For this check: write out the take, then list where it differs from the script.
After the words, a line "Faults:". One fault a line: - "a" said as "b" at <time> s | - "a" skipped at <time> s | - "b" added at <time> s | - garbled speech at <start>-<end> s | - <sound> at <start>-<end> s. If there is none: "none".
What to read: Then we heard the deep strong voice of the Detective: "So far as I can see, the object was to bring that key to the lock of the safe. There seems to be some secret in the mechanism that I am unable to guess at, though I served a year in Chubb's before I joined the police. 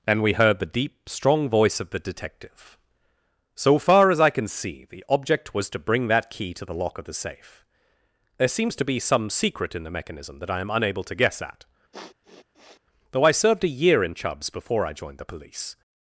And we heard the deep strong voice of the Detective: "So far as I can see, the object was to bring that key to the lock of the safe. There seems to be some secret in the mechanism that I am unable to guess at, though I served a year in Chubb's before I joined the police.
Faults:
- "Then" said as "And" at 0.1 s
- sniff at 11.9-12.8 s